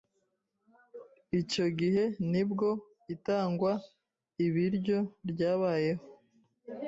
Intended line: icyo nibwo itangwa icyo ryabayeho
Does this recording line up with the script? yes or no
no